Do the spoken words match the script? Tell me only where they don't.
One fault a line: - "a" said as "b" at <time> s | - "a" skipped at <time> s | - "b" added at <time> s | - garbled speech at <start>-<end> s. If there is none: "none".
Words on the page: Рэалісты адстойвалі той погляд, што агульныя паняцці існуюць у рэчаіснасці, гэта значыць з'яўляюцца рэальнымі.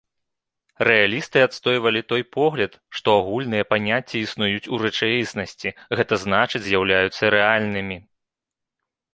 none